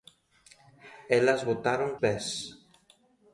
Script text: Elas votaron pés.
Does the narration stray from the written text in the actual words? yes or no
no